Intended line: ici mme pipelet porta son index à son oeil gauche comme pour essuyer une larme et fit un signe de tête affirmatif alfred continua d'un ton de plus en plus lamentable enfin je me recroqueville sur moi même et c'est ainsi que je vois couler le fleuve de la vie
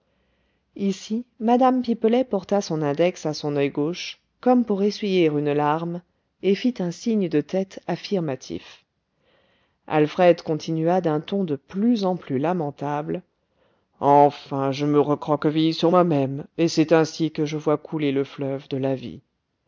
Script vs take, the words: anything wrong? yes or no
no